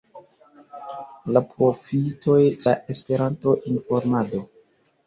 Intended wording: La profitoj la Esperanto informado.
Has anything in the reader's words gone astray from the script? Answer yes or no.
no